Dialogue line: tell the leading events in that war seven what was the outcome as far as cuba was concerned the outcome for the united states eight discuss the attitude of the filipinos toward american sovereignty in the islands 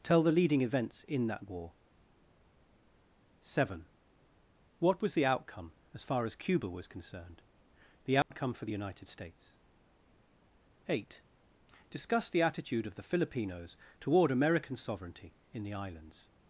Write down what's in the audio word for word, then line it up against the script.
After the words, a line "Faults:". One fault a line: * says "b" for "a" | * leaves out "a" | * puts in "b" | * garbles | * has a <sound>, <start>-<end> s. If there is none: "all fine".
tell the leading events in that war seven what was the outcome as far as cuba was concerned the outcome for the united states eight discuss the attitude of the filipinos toward american sovereignty in the islands
Faults:
* has a dropout, 8.2-8.3 s